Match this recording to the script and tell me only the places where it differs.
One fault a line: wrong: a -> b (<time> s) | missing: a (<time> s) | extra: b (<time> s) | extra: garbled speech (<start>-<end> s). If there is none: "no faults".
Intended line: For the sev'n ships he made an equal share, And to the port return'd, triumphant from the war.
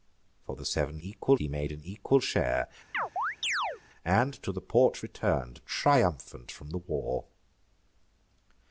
wrong: ships -> equal (1.0 s)